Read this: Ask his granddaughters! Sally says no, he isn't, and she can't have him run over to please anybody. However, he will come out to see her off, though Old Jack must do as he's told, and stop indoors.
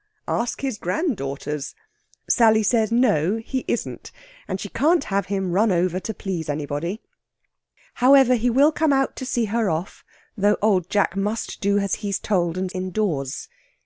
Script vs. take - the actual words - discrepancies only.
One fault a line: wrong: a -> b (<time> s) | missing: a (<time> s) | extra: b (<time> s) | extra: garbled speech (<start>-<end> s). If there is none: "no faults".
missing: stop (12.7 s)